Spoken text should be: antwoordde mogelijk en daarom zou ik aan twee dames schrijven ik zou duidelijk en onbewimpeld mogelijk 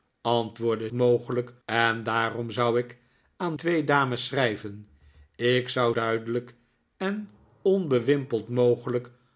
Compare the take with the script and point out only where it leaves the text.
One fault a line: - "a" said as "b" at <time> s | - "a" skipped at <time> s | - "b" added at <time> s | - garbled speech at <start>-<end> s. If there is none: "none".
none